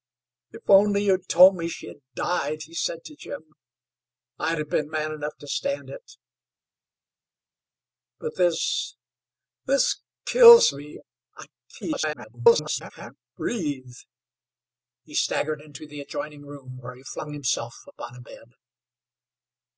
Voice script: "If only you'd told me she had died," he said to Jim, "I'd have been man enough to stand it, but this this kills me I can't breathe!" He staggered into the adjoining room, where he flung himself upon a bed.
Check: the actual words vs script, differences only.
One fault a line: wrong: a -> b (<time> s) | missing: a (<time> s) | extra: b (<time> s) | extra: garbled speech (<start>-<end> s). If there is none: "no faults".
extra: garbled speech (11.8-12.9 s)